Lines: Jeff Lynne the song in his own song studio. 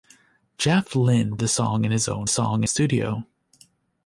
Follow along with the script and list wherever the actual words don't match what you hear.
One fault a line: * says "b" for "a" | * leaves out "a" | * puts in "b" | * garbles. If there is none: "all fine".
all fine